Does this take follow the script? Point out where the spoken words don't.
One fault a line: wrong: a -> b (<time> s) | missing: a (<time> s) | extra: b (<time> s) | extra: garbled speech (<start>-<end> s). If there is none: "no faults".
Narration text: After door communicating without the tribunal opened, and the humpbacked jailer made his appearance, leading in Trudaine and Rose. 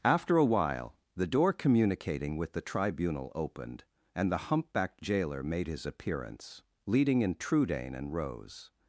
extra: a while the (0.3 s)
wrong: without -> with (2.4 s)